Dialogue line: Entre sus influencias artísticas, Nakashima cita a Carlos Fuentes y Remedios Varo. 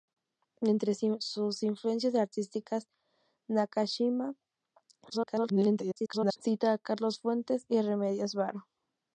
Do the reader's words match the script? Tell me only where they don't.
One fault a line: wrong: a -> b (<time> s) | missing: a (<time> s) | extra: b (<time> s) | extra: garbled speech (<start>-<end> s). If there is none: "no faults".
extra: garbled speech (5.1-6.4 s)